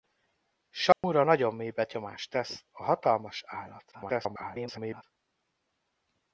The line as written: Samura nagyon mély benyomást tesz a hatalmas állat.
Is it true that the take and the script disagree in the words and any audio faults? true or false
true